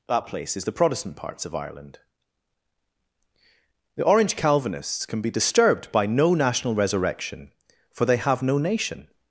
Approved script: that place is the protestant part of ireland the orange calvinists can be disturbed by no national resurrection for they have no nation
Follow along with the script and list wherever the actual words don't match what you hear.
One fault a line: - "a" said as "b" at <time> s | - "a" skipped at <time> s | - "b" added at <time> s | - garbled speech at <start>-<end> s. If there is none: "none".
- "part" said as "parts" at 1.1 s